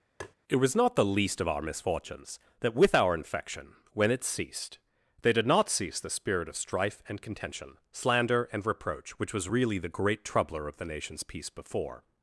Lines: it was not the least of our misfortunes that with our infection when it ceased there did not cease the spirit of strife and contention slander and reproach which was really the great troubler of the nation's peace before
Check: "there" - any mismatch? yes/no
yes